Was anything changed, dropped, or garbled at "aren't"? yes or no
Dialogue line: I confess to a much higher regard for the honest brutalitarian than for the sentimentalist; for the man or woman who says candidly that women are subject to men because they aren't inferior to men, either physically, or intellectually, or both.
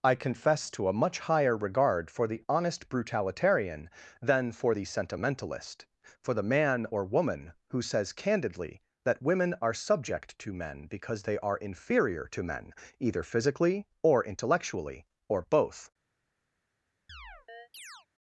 yes